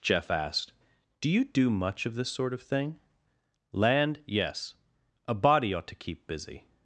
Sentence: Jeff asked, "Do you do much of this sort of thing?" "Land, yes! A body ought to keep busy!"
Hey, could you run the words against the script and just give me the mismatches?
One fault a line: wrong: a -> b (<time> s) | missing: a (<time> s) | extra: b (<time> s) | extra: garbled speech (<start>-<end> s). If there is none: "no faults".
no faults